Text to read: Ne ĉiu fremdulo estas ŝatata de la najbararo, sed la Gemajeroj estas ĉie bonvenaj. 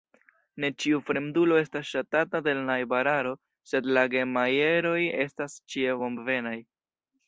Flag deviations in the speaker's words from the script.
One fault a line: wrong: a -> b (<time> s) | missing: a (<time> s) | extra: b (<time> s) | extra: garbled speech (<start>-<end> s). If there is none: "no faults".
no faults